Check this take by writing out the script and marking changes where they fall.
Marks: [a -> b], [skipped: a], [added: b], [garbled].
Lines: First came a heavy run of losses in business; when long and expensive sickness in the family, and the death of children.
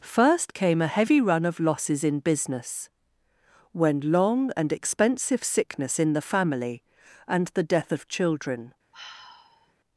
First came a heavy run of losses in business; when long and expensive sickness in the family, and the death of children.